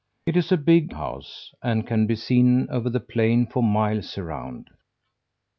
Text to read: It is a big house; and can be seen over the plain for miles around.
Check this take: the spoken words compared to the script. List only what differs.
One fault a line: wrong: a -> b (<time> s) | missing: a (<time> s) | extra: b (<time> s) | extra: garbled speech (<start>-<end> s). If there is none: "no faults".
no faults